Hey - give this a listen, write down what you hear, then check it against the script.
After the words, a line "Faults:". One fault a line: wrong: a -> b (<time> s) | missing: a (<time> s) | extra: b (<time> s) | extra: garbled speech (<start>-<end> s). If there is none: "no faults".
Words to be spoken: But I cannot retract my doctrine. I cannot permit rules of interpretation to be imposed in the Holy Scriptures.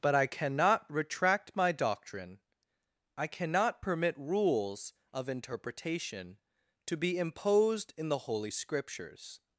But I cannot retract my doctrine. I cannot permit rules of interpretation to be imposed in the Holy Scriptures.
Faults:
no faults